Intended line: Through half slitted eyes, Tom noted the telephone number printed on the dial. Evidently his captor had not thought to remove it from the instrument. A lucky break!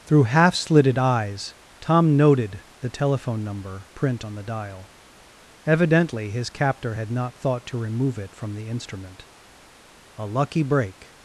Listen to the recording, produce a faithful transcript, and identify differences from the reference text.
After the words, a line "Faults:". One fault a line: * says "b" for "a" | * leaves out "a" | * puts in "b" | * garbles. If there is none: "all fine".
Through half slitted eyes, Tom noted the telephone number print on the dial. Evidently his captor had not thought to remove it from the instrument. A lucky break!
Faults:
* says "print" for "printed"